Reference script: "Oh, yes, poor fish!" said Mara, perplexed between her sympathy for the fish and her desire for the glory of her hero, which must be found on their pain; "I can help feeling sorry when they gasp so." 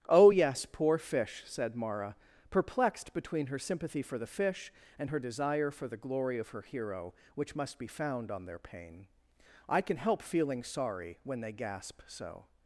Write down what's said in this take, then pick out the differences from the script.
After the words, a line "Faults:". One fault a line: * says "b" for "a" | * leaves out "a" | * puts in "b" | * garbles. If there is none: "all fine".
"Oh, yes, poor fish!" said Mara, perplexed between her sympathy for the fish and her desire for the glory of her hero, which must be found on their pain; "I can help feeling sorry when they gasp so."
Faults:
all fine